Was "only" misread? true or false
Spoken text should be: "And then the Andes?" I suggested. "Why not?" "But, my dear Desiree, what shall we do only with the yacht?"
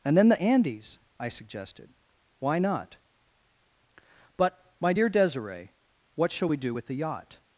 true